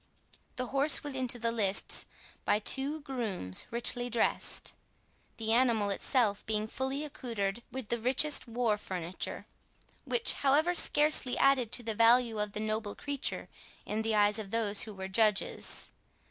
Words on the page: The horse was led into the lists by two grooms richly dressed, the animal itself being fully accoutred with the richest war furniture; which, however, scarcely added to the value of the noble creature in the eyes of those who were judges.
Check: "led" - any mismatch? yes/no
yes